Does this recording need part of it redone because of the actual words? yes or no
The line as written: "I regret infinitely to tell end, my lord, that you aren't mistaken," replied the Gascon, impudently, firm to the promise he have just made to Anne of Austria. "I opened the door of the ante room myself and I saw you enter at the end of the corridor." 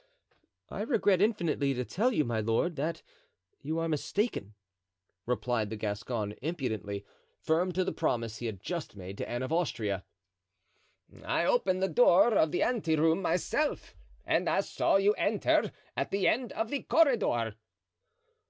yes